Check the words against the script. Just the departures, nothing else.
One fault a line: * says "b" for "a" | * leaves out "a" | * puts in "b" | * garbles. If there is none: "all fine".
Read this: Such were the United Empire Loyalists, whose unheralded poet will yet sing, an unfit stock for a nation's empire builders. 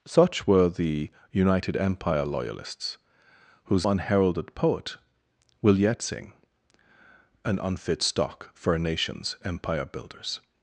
all fine